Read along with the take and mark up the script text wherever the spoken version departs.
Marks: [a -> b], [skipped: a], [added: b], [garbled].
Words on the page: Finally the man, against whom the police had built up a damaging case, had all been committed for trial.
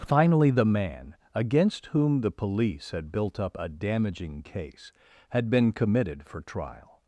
Finally the man, against whom the police had built up a damaging case, had [skipped: all] been committed for trial.